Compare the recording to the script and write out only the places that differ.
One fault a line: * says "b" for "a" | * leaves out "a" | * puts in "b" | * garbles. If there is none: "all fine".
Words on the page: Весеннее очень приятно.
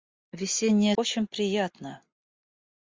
all fine